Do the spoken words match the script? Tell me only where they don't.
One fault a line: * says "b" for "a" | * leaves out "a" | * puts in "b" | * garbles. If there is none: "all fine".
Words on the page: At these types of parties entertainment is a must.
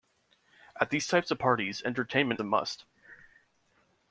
* leaves out "is"